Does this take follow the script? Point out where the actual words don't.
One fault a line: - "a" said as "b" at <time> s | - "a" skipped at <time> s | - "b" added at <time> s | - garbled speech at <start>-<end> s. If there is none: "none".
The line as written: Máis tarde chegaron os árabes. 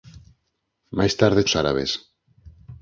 - "chegaron" skipped at 1.5 s